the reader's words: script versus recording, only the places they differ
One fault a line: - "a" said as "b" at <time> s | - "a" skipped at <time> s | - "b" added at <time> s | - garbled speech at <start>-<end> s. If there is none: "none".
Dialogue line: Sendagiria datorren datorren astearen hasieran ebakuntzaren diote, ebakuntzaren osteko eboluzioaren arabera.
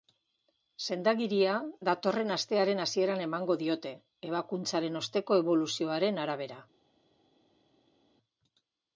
- "datorren" skipped at 2.3 s
- "ebakuntzaren" said as "emango" at 3.2 s